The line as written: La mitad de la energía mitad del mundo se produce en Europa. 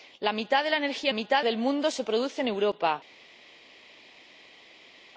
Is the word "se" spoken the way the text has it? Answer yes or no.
yes